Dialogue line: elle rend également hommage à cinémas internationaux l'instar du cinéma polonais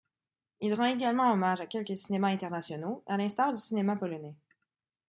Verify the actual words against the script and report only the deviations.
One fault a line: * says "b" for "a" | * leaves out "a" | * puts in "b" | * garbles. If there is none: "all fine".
* says "il" for "elle"
* puts in "quelques"
* puts in "à"